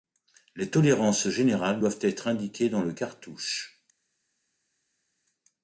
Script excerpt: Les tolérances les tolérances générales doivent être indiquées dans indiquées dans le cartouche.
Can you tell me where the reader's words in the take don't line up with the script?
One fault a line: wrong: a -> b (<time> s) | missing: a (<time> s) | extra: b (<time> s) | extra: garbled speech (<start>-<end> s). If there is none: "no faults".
missing: les tolérances (1.3 s)
missing: indiquées dans (2.8 s)